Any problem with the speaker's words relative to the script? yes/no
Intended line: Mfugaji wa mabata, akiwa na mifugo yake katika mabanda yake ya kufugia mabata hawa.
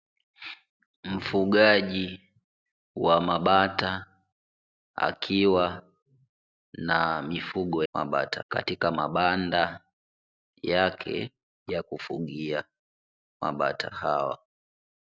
yes